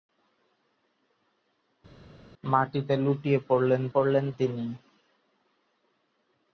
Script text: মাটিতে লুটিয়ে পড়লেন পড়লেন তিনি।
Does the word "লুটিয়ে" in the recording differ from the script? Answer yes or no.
no